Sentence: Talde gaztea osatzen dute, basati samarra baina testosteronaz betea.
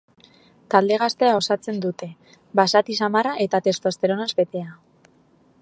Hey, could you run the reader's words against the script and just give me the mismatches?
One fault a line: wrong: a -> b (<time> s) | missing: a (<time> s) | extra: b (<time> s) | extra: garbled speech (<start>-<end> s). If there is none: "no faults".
wrong: baina -> eta (3.5 s)